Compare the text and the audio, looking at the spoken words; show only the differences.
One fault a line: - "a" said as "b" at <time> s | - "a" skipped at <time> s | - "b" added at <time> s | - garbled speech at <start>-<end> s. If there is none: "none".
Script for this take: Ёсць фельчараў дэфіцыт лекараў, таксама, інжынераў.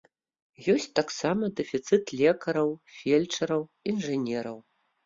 - "фельчараў" said as "таксама" at 1.0 s
- "таксама" said as "фельчараў" at 3.0 s